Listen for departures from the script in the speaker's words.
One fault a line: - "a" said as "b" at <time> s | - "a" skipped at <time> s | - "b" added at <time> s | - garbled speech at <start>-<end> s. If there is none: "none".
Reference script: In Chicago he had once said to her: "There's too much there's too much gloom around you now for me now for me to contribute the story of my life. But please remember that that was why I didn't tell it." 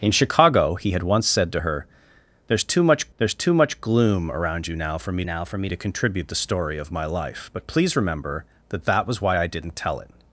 none